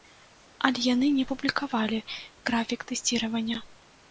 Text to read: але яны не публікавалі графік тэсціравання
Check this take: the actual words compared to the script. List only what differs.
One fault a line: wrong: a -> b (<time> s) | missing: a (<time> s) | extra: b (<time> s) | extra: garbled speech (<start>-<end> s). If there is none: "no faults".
no faults